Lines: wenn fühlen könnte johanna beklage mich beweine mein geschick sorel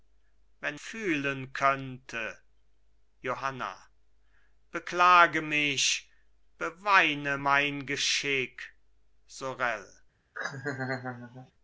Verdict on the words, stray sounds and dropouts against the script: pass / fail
fail